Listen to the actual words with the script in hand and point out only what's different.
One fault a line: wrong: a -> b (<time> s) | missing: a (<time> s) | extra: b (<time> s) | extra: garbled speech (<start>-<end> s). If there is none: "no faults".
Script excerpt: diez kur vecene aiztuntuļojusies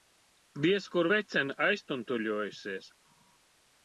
no faults